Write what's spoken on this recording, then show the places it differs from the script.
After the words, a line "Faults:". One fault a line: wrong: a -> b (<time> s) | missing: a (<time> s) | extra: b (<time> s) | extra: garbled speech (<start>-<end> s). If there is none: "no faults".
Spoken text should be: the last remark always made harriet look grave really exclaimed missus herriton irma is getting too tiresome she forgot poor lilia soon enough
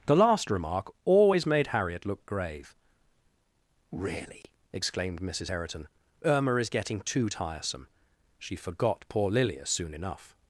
the last remark always made harriet look grave really exclaimed missus herriton irma is getting too tiresome she forgot poor lilia soon enough
Faults:
no faults